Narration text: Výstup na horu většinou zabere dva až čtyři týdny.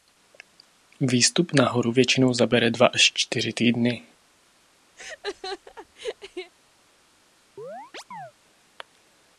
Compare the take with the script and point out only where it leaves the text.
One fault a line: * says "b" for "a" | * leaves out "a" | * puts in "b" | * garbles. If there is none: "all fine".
all fine